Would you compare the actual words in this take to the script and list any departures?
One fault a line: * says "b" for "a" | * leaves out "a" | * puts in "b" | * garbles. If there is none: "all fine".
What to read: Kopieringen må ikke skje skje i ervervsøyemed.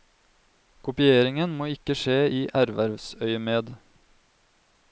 * leaves out "skje"